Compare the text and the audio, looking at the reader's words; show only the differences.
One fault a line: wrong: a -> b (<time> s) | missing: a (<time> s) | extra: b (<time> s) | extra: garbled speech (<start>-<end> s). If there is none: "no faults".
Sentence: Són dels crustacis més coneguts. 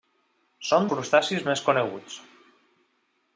missing: dels (0.9 s)